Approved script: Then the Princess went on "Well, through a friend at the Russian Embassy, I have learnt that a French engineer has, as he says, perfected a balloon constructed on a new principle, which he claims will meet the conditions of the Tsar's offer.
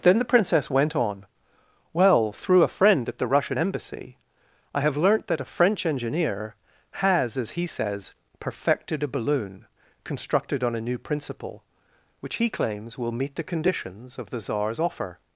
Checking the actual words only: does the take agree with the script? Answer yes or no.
yes